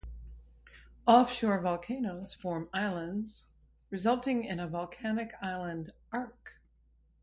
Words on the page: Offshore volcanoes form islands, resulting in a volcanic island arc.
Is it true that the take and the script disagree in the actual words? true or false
false